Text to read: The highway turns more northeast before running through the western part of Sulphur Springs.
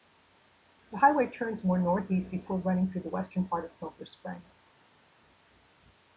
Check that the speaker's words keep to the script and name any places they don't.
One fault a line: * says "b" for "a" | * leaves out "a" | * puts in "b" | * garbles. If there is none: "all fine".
all fine